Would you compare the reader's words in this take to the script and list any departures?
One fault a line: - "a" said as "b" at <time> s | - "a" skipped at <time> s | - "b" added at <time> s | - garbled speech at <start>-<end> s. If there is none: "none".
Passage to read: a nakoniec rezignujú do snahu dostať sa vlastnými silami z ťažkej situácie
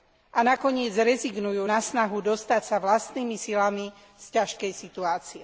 - "do" said as "na" at 1.6 s